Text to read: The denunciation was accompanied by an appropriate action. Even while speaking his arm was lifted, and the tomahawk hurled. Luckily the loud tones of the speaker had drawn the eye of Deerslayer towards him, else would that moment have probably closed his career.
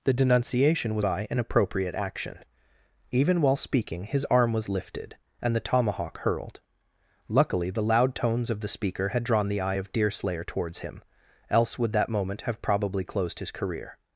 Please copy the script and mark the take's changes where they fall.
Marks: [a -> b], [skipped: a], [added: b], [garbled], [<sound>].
The denunciation was [skipped: accompanied] by an appropriate action. Even while speaking his arm was lifted, and the tomahawk hurled. Luckily the loud tones of the speaker had drawn the eye of Deerslayer towards him, else would that moment have probably closed his career.